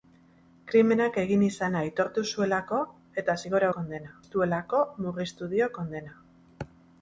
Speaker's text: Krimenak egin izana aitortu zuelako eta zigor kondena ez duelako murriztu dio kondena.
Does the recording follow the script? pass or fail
pass